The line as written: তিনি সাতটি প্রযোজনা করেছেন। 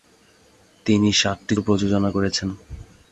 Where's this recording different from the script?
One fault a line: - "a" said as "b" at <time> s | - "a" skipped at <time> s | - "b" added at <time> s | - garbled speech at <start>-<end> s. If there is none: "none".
none